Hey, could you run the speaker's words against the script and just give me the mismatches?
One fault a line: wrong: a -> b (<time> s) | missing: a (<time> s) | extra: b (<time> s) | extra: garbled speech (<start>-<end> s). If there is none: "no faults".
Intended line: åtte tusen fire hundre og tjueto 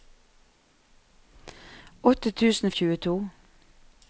missing: fire hundre (2.7 s)